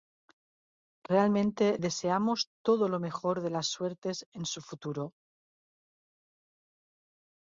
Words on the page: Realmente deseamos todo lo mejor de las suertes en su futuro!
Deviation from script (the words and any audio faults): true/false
false